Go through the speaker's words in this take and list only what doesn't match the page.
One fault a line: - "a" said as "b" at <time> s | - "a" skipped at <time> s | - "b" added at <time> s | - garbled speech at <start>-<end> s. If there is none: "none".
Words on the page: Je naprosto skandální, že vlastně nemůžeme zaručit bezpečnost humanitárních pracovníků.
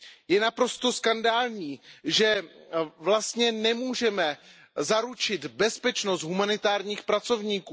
none